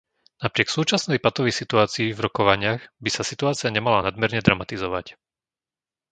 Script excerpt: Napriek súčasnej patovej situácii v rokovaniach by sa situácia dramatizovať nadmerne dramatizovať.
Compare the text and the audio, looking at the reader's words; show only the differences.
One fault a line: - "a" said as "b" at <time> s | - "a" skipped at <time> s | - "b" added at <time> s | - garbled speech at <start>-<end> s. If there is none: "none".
- "dramatizovať" said as "nemala" at 3.7 s